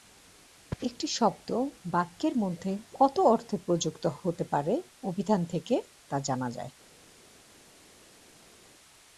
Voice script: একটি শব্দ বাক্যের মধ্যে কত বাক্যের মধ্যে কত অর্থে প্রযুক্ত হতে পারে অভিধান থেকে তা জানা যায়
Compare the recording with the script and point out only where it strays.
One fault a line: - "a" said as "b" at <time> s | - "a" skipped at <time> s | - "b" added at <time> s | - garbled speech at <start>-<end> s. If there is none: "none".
- "বাক্যের মধ্যে কত" skipped at 3.2 s